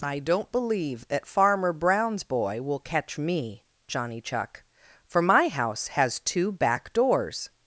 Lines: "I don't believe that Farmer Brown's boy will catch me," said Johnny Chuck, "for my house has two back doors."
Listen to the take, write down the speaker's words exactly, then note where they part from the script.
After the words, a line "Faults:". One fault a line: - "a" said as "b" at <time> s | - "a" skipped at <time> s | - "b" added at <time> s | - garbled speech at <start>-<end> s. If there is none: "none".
"I don't believe that Farmer Brown's boy will catch me," Johnny Chuck, "for my house has two back doors."
Faults:
- "said" skipped at 3.6 s